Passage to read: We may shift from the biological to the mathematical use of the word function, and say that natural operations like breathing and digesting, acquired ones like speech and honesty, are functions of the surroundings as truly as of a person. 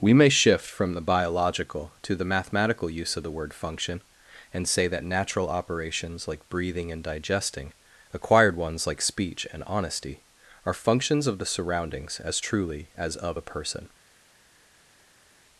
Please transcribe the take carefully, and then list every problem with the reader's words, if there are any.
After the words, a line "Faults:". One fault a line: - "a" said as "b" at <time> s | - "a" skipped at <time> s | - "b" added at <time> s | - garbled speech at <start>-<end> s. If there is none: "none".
We may shift from the biological to the mathematical use of the word function, and say that natural operations like breathing and digesting, acquired ones like speech and honesty, are functions of the surroundings as truly as of a person.
Faults:
none